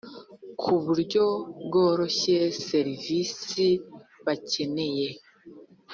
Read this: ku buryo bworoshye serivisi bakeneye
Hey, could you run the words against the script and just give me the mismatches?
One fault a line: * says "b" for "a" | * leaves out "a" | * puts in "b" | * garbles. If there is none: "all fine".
all fine